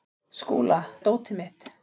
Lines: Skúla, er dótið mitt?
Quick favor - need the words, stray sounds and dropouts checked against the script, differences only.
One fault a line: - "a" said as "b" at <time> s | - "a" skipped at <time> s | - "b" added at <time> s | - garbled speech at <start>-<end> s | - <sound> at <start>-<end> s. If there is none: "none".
none